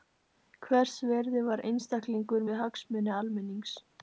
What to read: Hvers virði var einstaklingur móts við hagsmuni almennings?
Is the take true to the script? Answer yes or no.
no